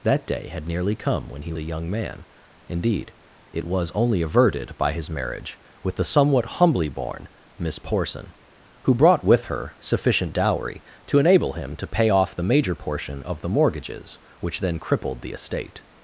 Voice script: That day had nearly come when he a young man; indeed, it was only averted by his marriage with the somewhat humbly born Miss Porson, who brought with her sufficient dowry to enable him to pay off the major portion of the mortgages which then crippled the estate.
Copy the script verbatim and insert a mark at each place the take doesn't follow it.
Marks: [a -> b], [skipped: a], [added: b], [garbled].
That day had nearly come when he a young man; indeed, it was only averted by his marriage with the somewhat humbly born Miss Porson, who brought with her sufficient dowry to enable him to pay off the major portion of the mortgages which then crippled the estate.